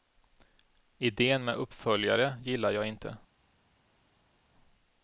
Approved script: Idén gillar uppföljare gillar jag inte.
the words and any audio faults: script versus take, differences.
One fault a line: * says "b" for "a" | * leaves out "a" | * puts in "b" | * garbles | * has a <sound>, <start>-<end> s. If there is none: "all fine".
* says "med" for "gillar"